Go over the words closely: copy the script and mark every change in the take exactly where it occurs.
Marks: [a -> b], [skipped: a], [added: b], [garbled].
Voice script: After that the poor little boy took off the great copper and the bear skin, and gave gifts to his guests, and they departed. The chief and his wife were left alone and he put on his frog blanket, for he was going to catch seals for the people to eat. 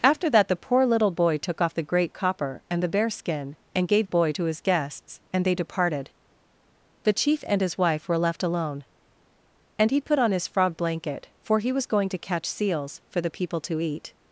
After that the poor little boy took off the great copper and the bear skin, and gave [gifts -> boy] to his guests, and they departed. The chief and his wife were left alone and he put on his frog blanket, for he was going to catch seals for the people to eat.